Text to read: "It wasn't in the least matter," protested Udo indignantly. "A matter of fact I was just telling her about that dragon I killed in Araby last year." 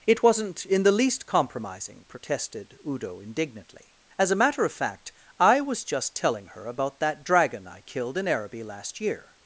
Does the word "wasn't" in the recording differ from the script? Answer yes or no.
no